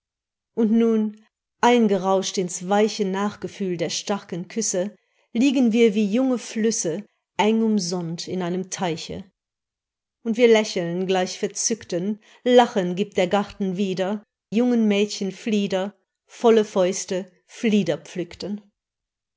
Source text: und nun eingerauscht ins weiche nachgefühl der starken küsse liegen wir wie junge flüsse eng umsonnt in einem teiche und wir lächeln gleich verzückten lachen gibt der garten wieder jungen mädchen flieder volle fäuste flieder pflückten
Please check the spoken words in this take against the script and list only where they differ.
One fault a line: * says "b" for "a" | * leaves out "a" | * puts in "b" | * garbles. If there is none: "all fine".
all fine